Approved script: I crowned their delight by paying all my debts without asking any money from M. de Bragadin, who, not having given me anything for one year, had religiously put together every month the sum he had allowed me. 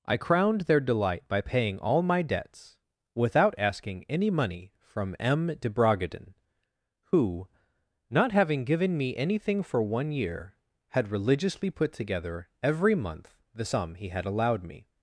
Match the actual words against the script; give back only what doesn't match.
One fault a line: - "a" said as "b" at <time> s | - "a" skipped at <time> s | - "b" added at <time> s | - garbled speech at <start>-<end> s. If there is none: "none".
none